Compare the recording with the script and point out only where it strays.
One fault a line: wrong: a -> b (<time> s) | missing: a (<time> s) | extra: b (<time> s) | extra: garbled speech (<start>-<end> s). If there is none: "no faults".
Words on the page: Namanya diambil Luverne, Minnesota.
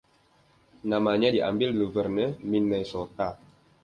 no faults